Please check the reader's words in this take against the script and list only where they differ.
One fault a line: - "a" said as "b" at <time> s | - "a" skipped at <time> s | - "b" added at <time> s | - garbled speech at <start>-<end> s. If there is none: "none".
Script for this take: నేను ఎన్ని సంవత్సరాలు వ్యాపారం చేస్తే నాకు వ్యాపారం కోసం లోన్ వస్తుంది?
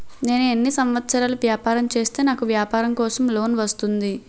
none